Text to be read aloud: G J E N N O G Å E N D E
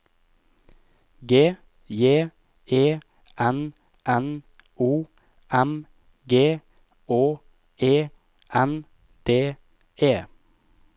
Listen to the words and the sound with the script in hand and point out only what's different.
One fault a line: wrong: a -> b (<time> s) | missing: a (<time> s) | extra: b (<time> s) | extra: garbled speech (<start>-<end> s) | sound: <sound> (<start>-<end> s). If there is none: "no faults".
extra: M (5.5 s)